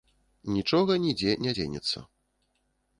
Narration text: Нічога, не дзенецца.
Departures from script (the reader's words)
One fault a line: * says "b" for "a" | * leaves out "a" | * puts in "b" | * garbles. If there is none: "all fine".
* puts in "нідзе"